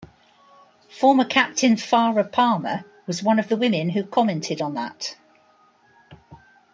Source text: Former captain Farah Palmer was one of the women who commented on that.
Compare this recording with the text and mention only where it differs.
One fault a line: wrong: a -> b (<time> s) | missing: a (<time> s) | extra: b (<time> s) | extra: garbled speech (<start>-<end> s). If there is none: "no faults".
no faults